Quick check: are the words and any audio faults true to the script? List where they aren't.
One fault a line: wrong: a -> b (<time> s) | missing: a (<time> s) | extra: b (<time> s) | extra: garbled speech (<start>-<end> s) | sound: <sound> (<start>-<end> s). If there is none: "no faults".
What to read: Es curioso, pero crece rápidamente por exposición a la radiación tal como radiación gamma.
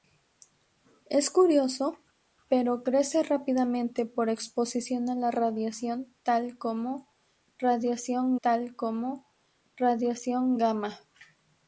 extra: tal como radiación (8.4 s)